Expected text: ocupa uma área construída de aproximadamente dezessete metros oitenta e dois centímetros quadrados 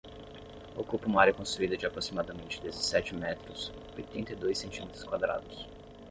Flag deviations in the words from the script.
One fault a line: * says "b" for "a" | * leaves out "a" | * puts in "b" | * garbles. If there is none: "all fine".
all fine